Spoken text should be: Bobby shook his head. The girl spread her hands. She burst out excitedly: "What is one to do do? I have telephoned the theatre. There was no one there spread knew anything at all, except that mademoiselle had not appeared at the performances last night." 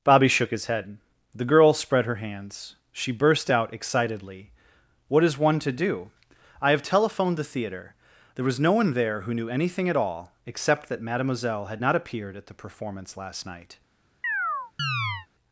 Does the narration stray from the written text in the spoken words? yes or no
yes